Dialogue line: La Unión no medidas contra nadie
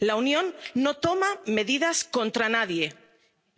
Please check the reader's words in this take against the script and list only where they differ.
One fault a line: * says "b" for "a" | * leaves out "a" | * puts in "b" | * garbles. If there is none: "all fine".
* puts in "toma"